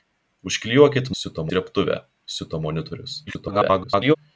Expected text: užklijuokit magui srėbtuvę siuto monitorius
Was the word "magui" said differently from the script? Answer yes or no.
yes